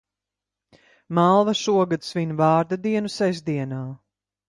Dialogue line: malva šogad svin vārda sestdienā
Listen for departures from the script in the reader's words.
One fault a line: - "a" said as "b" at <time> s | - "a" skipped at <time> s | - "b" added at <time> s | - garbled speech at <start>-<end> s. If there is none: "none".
- "dienu" added at 2.9 s